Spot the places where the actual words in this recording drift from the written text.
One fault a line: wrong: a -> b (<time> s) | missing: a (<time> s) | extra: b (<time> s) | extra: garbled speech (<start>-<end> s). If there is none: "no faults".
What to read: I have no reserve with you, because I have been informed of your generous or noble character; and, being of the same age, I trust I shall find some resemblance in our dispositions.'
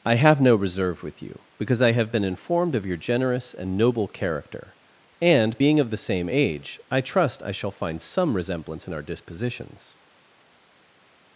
wrong: or -> and (3.5 s)